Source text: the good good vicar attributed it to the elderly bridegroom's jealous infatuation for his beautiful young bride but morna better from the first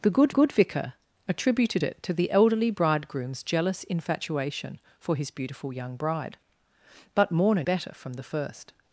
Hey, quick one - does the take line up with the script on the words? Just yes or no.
yes